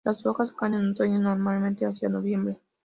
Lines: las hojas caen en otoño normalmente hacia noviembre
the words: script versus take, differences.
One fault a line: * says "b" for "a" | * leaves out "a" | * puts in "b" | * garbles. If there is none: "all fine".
all fine